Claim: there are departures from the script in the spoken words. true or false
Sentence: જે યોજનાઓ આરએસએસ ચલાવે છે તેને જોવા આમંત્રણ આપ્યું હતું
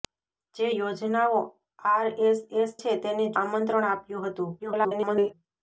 true